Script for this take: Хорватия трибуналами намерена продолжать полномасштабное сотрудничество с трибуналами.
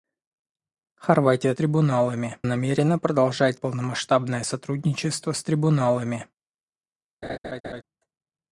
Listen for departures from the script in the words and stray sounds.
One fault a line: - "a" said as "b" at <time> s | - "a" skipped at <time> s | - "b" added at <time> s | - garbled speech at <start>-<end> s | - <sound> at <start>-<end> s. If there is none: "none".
- laugh at 7.2-7.8 s